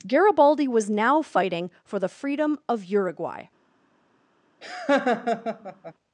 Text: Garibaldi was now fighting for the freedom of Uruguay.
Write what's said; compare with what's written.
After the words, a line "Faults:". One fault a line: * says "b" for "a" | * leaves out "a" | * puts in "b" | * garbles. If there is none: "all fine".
Garibaldi was now fighting for the freedom of Uruguay.
Faults:
all fine